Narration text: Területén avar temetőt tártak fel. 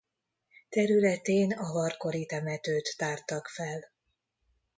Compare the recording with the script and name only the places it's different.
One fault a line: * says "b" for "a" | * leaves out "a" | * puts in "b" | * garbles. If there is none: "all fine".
* puts in "kori"